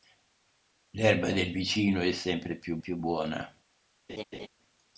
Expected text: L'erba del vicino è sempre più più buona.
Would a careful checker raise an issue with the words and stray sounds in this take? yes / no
yes